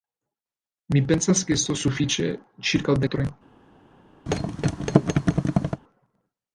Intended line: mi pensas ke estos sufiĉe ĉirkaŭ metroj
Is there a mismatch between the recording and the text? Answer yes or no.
no